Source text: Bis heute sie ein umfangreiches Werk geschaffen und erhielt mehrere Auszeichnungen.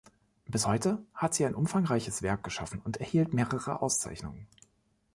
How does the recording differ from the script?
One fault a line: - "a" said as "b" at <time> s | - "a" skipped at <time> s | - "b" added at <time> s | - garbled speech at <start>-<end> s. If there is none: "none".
- "hat" added at 1.1 s